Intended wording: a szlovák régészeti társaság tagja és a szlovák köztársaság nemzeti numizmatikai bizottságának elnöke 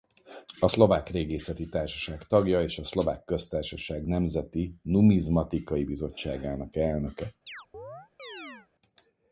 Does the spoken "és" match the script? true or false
true